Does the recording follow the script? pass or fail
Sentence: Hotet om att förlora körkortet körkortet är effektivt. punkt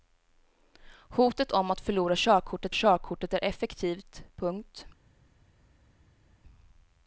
pass